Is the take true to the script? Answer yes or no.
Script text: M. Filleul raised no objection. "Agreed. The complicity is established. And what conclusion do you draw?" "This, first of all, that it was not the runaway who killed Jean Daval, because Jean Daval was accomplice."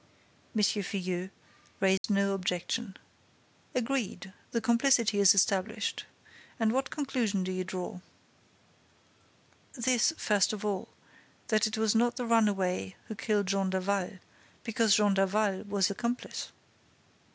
yes